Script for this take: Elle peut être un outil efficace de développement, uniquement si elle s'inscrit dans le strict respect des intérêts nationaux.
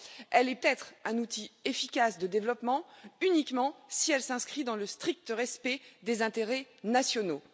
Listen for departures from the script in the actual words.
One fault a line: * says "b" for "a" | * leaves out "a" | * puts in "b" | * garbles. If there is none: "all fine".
* leaves out "peut"